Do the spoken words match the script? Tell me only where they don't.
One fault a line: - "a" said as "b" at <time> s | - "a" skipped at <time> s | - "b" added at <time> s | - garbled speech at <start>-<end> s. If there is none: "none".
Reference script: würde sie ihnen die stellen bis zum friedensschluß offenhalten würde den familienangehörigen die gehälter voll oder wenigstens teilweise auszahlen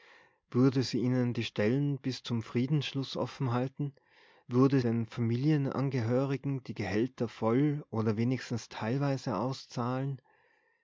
none